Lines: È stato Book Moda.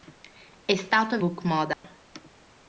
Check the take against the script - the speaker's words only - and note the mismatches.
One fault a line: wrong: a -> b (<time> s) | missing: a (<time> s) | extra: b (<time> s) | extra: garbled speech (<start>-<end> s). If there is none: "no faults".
no faults